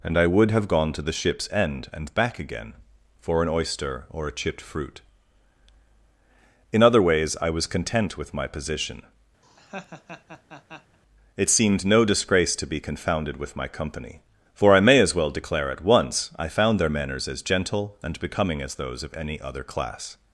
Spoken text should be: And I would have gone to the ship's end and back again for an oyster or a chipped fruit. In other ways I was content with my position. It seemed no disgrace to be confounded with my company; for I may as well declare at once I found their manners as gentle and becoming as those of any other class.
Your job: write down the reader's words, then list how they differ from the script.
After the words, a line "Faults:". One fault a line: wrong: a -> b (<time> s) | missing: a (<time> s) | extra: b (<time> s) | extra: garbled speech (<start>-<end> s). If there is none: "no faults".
And I would have gone to the ship's end and back again for an oyster or a chipped fruit. In other ways I was content with my position. It seemed no disgrace to be confounded with my company; for I may as well declare at once I found their manners as gentle and becoming as those of any other class.
Faults:
no faults